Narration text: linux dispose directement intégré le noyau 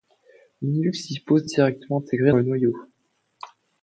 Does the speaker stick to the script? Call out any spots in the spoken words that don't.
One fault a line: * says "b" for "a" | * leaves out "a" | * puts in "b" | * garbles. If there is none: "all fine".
all fine